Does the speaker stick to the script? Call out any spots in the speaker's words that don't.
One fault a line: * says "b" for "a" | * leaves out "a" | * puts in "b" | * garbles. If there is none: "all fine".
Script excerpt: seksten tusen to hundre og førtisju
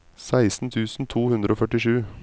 all fine